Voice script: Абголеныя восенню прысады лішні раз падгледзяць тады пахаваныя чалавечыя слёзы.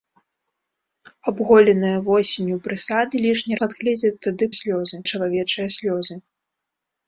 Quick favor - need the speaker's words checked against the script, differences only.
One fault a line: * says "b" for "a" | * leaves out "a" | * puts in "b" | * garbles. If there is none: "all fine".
* leaves out "раз"
* says "слёзы" for "пахаваныя"